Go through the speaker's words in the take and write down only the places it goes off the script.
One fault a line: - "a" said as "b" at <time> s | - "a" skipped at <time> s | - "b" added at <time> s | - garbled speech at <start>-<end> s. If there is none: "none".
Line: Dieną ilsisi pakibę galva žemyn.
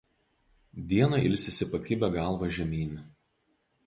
none